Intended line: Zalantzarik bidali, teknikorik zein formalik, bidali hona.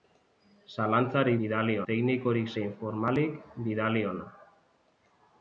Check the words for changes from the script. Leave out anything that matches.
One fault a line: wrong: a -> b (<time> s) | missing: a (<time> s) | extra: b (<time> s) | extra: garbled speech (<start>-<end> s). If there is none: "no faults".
no faults